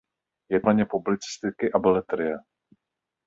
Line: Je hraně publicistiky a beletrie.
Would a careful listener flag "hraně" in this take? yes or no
no